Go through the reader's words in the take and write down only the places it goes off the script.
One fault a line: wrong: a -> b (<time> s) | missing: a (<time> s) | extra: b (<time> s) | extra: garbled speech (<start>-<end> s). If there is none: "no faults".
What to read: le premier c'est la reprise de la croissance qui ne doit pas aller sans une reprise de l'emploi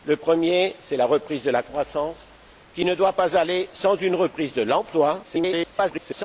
extra: garbled speech (5.2-6.2 s)